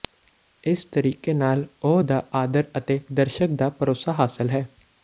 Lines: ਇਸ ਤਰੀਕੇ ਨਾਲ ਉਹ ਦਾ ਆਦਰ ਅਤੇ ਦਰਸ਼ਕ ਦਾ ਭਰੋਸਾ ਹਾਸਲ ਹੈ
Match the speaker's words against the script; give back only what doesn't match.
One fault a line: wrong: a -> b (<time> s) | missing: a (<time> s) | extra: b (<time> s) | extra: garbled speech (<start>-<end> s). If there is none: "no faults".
no faults